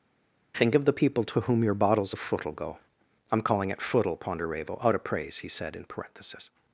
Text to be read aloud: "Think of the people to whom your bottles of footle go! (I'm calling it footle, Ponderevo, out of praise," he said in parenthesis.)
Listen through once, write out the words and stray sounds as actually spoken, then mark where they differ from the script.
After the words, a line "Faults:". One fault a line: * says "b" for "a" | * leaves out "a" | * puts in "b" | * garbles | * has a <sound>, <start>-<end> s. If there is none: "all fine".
"Think of the people to whom your bottles of footle go! (I'm calling it footle, Ponderevo, out of praise," he said in parenthesis.)
Faults:
all fine